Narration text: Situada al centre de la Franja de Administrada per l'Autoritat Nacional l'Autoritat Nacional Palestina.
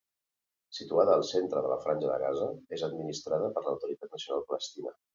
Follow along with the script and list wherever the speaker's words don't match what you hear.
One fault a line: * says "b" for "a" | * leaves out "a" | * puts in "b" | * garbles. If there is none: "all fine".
* puts in "Gaza és"
* leaves out "l'Autoritat Nacional"